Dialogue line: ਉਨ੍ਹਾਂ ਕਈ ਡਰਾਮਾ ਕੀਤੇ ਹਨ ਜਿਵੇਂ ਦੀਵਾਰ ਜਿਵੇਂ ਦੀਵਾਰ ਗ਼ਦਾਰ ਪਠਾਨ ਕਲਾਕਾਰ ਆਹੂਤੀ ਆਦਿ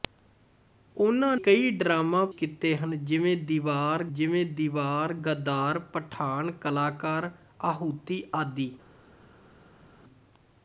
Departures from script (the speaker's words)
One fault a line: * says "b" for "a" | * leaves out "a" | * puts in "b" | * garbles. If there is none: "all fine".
all fine